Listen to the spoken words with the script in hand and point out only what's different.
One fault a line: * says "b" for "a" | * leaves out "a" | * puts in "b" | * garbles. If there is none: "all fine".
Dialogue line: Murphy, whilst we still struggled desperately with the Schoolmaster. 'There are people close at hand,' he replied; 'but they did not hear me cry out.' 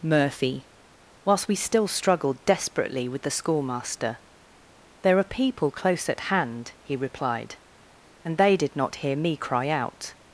* says "and" for "but"